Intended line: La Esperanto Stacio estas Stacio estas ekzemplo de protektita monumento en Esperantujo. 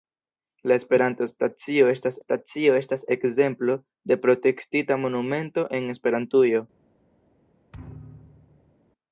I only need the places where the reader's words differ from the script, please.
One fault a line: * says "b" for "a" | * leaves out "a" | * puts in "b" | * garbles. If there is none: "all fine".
all fine